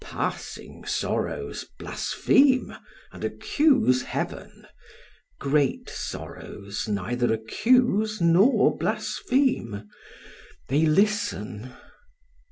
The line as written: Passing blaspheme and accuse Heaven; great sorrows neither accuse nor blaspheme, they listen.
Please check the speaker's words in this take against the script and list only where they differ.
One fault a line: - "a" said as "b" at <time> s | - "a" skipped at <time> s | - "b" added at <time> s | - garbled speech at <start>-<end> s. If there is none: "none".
- "sorrows" added at 0.8 s